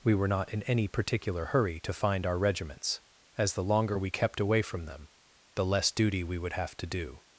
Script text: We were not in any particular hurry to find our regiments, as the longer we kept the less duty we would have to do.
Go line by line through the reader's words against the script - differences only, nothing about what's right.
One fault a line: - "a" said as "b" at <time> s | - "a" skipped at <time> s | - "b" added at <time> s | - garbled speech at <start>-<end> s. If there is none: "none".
- "away from them" added at 4.4 s